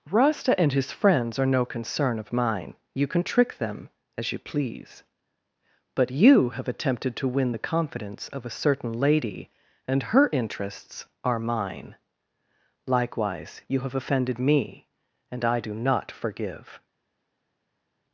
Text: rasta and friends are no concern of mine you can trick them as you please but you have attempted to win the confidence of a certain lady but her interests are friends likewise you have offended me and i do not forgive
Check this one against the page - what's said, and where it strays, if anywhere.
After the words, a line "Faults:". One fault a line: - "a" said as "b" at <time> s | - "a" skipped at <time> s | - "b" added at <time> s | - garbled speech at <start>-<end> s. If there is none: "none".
rasta and his friends are no concern of mine you can trick them as you please but you have attempted to win the confidence of a certain lady and her interests are mine likewise you have offended me and i do not forgive
Faults:
- "his" added at 0.7 s
- "but" said as "and" at 9.9 s
- "friends" said as "mine" at 11.4 s